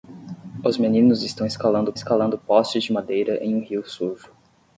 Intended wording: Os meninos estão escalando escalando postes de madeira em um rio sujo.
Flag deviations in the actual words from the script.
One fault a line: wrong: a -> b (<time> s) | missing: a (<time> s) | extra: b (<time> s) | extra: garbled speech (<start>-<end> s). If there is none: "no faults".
no faults